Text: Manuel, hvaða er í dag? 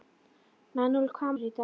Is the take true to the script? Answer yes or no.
yes